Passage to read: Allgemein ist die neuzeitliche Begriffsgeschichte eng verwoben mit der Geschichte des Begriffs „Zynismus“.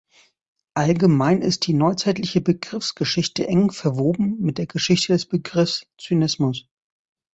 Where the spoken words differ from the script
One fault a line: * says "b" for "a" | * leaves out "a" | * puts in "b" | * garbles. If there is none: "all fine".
all fine